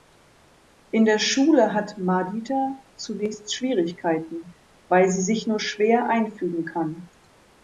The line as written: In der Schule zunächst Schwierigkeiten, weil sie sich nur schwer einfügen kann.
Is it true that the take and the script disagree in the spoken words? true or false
true